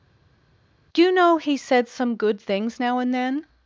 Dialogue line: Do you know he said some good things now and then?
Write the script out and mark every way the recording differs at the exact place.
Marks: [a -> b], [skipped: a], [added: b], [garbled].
Do you know he said some good things now and then?